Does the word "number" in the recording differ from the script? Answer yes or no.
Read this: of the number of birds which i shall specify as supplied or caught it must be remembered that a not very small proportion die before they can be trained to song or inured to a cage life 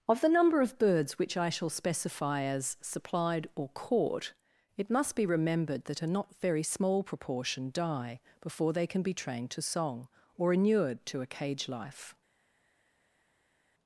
no